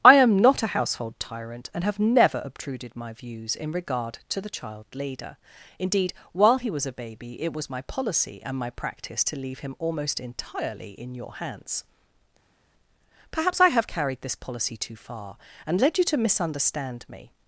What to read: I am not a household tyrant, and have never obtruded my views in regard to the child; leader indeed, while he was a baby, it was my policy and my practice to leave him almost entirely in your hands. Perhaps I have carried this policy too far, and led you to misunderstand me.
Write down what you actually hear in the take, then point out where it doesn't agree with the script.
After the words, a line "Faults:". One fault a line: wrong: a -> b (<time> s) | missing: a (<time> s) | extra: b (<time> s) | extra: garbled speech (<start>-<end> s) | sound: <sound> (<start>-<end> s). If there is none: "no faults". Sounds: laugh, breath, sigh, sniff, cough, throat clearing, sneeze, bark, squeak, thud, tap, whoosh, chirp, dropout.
I am not a household tyrant, and have never obtruded my views in regard to the child; leader indeed, while he was a baby, it was my policy and my practice to leave him almost entirely in your hands. Perhaps I have carried this policy too far, and led you to misunderstand me.
Faults:
no faults